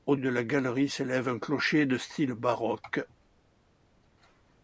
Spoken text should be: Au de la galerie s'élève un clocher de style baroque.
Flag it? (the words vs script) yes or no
no